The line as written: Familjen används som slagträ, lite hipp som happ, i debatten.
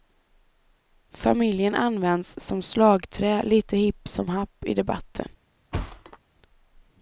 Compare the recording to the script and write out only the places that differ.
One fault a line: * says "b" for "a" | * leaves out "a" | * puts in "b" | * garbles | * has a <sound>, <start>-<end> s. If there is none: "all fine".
* has a thud, 5.7-6.2 s